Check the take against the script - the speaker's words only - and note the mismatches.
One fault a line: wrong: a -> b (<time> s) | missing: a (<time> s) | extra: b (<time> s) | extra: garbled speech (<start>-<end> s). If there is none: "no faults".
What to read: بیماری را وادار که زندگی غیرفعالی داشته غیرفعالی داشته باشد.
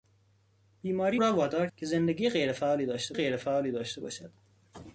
no faults